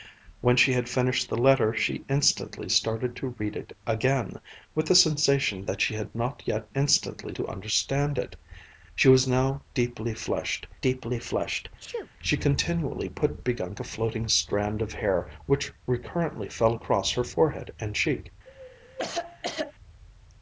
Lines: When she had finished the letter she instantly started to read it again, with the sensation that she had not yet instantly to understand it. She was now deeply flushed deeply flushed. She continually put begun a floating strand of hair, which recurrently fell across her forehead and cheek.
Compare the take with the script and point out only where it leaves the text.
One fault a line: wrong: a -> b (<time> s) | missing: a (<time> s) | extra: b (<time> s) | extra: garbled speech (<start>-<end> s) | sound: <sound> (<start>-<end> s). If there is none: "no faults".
sound: sneeze (11.8-12.1 s)
sound: cough (18.5-19.7 s)